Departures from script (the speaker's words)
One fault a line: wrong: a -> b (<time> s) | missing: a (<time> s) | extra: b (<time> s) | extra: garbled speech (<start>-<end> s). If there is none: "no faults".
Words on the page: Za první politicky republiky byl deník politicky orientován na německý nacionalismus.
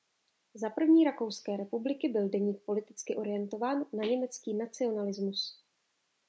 wrong: politicky -> rakouské (1.0 s)